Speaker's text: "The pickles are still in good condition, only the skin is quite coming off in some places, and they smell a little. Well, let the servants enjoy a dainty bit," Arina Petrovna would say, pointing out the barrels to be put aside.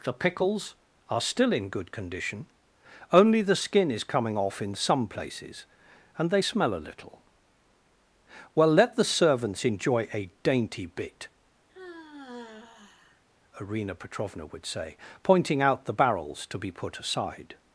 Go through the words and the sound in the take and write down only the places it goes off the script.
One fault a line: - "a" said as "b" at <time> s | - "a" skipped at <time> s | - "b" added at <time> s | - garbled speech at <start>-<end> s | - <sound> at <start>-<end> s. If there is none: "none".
- "quite" skipped at 4.0 s
- sigh at 11.7-13.2 s